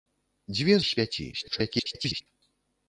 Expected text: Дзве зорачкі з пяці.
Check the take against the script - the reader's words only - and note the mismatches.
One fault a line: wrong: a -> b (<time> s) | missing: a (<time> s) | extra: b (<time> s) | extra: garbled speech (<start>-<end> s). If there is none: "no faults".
missing: зорачкі (0.8 s)
extra: garbled speech (1.3-2.2 s)